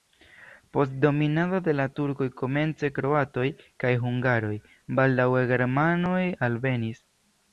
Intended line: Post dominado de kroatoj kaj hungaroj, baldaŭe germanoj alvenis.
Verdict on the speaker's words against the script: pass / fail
fail